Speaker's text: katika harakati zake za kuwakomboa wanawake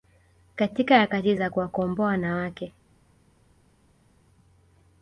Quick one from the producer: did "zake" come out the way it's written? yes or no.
no